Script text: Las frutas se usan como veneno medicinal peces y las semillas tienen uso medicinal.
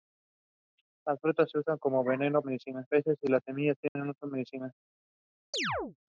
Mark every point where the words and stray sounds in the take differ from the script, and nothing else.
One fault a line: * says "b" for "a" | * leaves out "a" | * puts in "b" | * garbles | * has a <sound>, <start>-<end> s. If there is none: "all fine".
* has a dropout, 3.9-4.0 s
* has a chirp, 5.5-6.0 s